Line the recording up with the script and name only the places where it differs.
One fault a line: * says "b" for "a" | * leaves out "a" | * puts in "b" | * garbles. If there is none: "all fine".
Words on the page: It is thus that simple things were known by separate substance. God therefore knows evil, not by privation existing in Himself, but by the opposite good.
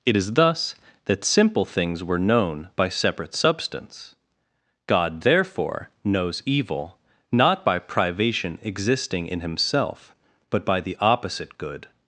all fine